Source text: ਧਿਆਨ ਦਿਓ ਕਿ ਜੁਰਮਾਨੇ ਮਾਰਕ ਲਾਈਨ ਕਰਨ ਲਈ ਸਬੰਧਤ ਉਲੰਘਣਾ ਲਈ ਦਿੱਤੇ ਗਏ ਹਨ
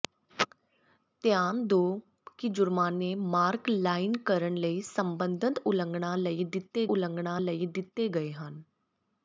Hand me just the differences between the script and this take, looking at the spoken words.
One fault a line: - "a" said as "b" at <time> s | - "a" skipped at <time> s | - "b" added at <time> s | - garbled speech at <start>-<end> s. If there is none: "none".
- "ਉਲੰਘਣਾ ਲਈ ਦਿੱਤੇ" added at 6.9 s